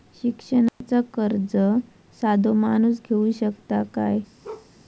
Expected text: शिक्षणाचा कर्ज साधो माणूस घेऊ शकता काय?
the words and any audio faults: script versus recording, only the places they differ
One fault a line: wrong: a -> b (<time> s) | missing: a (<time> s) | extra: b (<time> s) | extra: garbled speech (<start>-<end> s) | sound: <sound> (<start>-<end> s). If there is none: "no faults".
sound: dropout (0.7-0.8 s)
sound: bark (4.4-4.7 s)